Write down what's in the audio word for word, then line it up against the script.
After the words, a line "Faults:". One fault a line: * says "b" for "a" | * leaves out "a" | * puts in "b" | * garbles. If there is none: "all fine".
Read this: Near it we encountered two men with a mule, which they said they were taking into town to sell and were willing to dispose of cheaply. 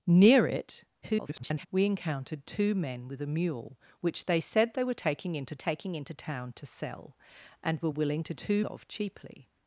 Near it [garbled] we encountered two men with a mule, which they said they were taking into taking into town to sell and were willing to two of cheaply.
Faults:
* garbles
* puts in "taking into"
* says "two" for "dispose"